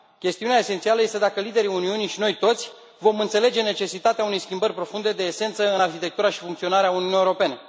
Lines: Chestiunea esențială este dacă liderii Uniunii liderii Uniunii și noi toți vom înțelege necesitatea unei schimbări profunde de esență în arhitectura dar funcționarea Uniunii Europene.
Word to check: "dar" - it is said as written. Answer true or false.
false